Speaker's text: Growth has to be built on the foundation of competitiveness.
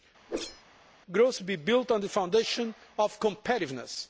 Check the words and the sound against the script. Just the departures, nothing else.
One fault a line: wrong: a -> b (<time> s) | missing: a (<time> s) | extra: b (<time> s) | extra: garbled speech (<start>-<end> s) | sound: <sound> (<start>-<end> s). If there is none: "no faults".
sound: whoosh (0.3-0.6 s)
missing: has (1.4 s)